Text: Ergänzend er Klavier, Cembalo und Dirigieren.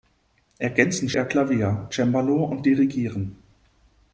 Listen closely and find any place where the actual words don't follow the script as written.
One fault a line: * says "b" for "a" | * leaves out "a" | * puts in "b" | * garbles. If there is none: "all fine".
all fine